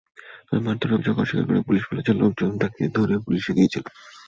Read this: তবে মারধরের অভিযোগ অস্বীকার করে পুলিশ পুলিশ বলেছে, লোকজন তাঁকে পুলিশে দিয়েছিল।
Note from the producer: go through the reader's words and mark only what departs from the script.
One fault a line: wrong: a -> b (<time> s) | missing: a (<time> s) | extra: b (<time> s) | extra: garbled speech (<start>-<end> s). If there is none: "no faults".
missing: পুলিশ (1.8 s)
extra: ধরে (3.0 s)